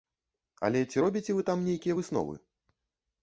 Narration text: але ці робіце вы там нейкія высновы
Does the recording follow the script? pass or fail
pass